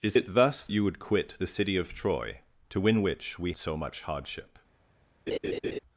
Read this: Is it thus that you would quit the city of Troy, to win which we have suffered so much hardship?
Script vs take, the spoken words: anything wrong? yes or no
yes